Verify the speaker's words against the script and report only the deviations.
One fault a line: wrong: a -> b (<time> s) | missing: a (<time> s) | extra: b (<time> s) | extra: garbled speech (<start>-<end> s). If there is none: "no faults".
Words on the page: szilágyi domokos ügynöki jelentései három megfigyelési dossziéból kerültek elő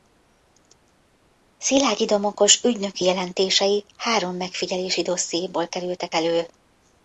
no faults